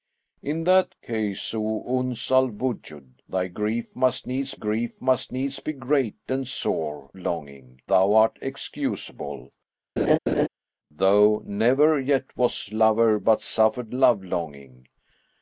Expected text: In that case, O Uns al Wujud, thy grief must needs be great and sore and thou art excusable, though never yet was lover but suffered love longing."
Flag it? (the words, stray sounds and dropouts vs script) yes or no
yes